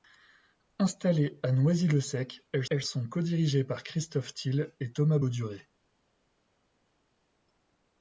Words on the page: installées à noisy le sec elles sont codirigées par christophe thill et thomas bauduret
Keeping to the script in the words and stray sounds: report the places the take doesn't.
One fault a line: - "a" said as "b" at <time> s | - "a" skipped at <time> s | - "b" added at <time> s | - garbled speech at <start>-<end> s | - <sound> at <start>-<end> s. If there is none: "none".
- "elles" added at 2.7 s